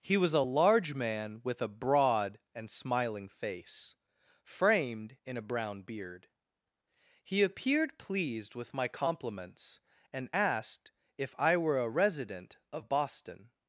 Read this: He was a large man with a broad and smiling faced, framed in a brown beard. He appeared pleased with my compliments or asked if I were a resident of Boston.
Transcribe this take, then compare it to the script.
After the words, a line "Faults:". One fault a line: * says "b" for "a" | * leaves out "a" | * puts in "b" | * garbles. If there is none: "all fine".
He was a large man with a broad and smiling face, framed in a brown beard. He appeared pleased with my compliments and asked if I were a resident of Boston.
Faults:
* says "face" for "faced"
* says "and" for "or"